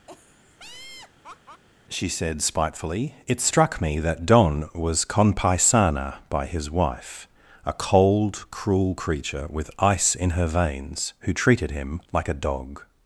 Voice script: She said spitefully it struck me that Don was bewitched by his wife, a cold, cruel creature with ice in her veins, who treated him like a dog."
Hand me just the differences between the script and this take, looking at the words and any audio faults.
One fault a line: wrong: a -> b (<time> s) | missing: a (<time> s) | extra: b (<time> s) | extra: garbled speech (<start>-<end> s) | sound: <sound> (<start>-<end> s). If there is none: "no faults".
sound: laugh (0.1-1.6 s)
wrong: bewitched -> conpaisana (5.0 s)